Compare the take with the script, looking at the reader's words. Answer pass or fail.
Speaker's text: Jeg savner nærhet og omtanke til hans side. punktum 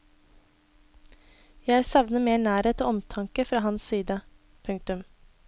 fail